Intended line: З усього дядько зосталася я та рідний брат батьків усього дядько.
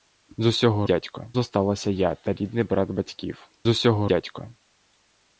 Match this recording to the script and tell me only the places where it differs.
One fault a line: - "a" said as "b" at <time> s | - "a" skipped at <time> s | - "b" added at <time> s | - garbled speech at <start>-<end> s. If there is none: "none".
none